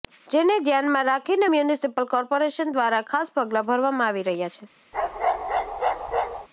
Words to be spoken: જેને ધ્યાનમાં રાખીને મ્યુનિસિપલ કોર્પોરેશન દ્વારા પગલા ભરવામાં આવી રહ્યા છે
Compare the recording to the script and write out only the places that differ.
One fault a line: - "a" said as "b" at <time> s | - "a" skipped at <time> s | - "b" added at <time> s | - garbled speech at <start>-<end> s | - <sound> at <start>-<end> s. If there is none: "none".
- "ખાસ" added at 3.1 s
- bark at 4.9-6.5 s